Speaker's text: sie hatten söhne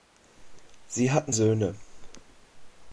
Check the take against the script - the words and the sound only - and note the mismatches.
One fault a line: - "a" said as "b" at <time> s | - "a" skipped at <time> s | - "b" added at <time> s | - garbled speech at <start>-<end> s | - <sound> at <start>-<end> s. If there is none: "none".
none